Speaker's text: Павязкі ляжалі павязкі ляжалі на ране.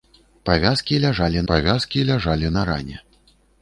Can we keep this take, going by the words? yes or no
yes